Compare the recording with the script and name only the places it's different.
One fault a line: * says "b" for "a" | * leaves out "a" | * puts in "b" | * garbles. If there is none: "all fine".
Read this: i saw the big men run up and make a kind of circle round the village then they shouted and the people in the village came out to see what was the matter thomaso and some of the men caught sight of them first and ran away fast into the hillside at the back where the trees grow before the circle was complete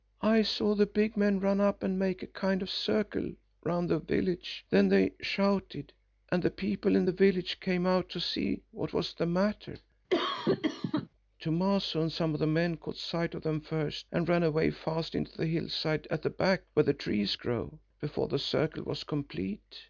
all fine